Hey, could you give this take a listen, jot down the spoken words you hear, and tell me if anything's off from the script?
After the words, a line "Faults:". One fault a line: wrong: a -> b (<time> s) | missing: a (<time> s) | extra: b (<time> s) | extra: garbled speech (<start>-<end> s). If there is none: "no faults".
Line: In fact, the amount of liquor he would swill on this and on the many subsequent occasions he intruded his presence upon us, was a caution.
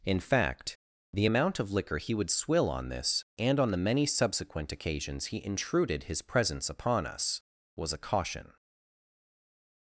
In fact, the amount of liquor he would swill on this and on the many subsequent occasions he intruded his presence upon us, was a caution.
Faults:
no faults